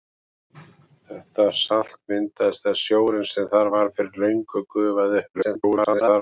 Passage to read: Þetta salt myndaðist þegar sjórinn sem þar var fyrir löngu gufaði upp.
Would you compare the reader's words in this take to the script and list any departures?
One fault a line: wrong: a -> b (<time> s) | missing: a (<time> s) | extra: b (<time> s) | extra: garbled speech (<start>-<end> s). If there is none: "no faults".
extra: garbled speech (5.3-6.2 s)